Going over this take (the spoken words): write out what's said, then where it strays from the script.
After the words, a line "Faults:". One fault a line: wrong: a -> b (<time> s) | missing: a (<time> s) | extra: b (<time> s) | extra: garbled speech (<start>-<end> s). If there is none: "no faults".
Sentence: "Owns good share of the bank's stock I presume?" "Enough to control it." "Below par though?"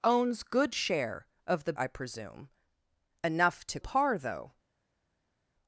"Owns good share of the I presume?" "Enough to par though?"
Faults:
missing: bank's stock (1.7 s)
missing: control it Below (3.8 s)